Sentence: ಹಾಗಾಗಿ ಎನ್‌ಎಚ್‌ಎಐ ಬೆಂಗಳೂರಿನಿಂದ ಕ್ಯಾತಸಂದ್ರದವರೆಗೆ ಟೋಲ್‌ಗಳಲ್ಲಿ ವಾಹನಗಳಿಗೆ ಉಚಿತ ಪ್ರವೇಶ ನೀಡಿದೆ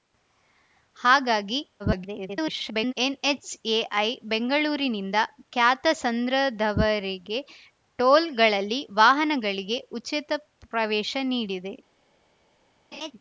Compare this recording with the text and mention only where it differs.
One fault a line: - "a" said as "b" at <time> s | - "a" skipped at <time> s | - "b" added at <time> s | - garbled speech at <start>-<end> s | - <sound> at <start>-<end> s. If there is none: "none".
- garbled speech at 1.8-2.9 s
- laugh at 12.9-13.1 s